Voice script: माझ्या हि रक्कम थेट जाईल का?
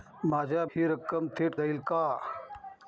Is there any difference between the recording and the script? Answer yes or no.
no